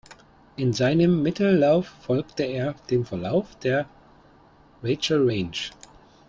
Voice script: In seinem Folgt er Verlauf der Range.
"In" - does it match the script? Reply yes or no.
yes